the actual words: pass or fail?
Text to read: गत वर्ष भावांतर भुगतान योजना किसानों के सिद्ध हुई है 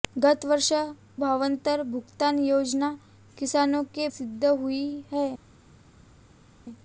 pass